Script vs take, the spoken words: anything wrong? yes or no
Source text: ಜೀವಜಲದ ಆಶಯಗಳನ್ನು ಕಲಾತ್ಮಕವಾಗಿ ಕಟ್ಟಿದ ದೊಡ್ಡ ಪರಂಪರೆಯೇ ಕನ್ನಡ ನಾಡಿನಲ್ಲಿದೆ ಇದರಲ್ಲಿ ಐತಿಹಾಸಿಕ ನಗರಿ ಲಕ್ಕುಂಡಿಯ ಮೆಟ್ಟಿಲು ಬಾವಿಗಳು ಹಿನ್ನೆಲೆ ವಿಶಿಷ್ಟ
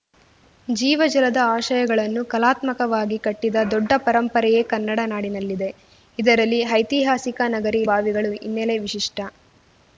yes